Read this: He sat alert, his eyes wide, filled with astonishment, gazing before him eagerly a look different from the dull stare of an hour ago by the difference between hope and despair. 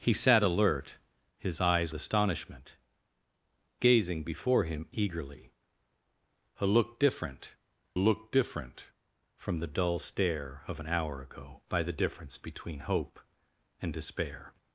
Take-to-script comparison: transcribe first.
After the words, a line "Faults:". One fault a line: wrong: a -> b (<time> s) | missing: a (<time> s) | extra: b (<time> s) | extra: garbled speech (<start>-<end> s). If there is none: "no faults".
He sat alert, his eyes astonishment, gazing before him eagerly a look different look different from the dull stare of an hour ago by the difference between hope and despair.
Faults:
missing: wide filled with (1.9 s)
extra: look different (8.0 s)